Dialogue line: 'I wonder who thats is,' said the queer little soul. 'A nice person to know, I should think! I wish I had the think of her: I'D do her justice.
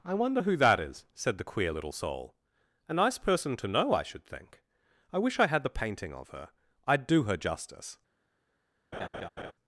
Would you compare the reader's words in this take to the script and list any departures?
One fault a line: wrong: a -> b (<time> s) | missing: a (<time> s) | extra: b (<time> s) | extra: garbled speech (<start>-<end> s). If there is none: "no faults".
wrong: thats -> that (0.6 s)
wrong: think -> painting (5.7 s)